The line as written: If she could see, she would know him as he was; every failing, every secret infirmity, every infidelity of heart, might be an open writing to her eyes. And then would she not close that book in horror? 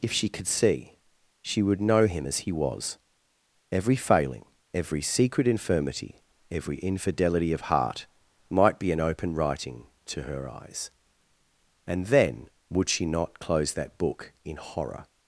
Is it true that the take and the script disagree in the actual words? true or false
false